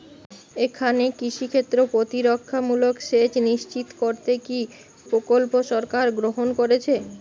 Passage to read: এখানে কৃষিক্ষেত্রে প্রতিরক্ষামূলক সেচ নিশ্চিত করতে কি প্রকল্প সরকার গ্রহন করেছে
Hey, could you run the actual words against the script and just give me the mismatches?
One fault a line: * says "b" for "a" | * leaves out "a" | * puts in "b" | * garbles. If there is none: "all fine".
all fine